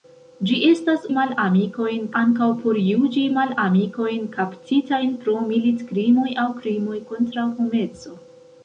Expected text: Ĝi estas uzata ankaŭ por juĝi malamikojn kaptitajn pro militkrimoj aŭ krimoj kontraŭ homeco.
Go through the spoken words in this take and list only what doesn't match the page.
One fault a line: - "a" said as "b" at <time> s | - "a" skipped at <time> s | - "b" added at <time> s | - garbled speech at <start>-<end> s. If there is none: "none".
- "uzata" said as "malamikojn" at 1.2 s